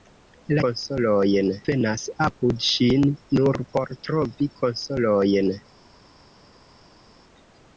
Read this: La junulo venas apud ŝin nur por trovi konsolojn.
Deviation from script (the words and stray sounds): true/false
true